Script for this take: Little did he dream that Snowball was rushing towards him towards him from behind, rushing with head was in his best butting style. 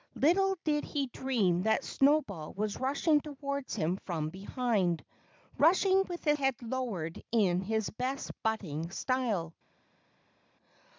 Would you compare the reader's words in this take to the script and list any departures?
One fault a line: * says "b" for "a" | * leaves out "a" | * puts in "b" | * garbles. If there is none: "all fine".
* leaves out "towards him"
* says "lowered" for "was"